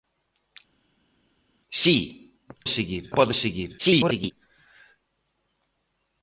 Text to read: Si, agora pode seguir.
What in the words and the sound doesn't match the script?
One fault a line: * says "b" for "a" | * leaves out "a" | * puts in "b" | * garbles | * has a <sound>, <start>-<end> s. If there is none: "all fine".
* says "seguir" for "agora"
* garbles